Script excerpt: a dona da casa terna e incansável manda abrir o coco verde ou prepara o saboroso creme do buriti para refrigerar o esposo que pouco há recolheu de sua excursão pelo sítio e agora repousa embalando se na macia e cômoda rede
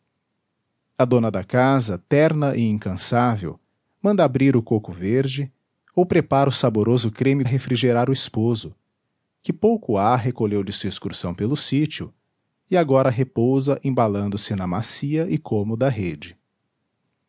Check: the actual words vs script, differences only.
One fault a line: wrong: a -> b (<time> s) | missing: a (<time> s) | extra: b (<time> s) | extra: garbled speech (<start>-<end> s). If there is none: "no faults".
missing: do buriti para (7.4 s)